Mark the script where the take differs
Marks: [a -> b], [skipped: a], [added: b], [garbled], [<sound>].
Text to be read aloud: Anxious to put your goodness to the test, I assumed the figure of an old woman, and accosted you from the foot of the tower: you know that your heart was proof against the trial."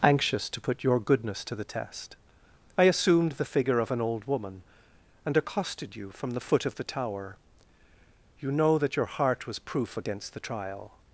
Anxious to put your goodness to the test, I assumed the figure of an old woman, and accosted you from the foot of the tower: you know that your heart was proof against the trial."